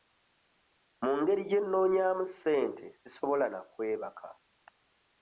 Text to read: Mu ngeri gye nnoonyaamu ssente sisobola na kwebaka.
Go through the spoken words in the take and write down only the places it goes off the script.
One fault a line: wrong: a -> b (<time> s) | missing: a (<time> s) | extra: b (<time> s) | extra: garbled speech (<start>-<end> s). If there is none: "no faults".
no faults